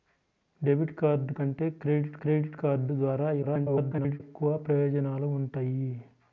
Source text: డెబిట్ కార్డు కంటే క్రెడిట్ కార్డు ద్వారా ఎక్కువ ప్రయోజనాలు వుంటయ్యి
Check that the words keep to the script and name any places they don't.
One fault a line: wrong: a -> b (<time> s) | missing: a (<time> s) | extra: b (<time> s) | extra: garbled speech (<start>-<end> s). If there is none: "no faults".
extra: క్రెడిట్ (2.2 s)
extra: garbled speech (3.4-4.2 s)